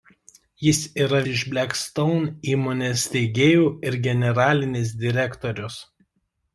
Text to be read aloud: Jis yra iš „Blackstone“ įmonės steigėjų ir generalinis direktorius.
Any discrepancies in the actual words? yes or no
no